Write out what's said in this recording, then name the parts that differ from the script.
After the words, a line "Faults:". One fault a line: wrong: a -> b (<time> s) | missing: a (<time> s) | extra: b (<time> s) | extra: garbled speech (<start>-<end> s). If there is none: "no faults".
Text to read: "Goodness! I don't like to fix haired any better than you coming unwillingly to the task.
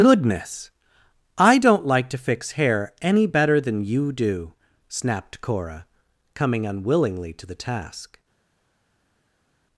"Goodness! I don't like to fix hair any better than you do," snapped Cora, coming unwillingly to the task.
Faults:
wrong: haired -> hair (2.5 s)
extra: do snapped Cora (4.1 s)